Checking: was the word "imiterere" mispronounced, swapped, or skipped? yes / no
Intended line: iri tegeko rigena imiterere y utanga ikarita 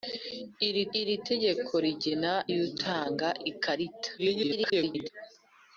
yes